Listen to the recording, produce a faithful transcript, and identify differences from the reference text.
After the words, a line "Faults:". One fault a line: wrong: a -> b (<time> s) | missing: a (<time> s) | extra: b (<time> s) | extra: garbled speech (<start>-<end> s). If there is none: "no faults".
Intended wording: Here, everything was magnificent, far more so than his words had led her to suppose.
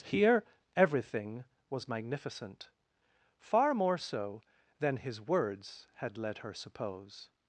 Here, everything was magnificent, far more so than his words had led her suppose.
Faults:
missing: to (6.5 s)